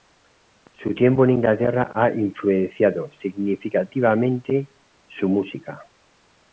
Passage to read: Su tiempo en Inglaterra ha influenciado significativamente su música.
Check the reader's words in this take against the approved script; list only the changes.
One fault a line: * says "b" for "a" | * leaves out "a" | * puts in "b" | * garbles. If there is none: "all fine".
all fine